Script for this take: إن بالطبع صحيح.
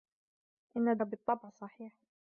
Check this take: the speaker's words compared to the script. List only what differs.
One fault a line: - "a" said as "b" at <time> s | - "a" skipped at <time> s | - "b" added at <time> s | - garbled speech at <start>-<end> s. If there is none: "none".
none